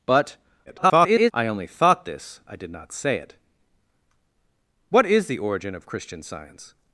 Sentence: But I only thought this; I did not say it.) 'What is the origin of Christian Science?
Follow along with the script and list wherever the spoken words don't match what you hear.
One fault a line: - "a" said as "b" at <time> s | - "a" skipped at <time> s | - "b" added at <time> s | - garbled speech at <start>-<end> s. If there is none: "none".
- garbled speech at 0.7-1.3 s